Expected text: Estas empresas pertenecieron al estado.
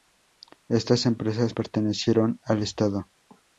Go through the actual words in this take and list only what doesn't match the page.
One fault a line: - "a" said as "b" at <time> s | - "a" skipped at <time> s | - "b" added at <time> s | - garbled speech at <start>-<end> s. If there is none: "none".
none